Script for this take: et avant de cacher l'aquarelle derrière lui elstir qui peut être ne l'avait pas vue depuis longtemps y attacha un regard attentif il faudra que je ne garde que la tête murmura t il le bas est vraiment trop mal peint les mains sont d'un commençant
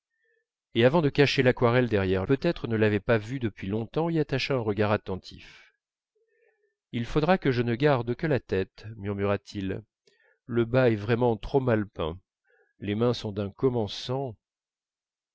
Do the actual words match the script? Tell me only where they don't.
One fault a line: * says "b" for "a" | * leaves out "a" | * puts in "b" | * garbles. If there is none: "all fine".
* leaves out "lui elstir qui"